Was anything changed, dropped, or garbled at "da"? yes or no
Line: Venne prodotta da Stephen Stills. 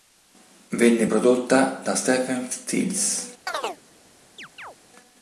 no